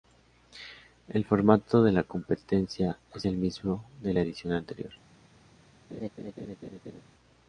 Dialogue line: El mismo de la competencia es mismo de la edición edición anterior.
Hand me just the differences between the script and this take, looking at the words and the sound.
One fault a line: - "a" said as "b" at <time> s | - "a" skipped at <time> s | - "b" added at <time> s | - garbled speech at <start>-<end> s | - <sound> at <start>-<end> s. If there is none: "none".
- "mismo" said as "formato" at 1.2 s
- "el" added at 3.3 s
- "edición" skipped at 4.5 s
- laugh at 5.9-7.0 s